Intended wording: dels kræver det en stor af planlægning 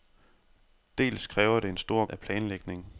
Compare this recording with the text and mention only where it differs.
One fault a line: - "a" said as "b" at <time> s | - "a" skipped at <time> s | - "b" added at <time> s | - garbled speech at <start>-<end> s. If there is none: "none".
none